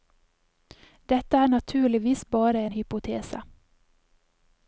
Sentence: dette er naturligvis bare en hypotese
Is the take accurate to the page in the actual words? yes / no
yes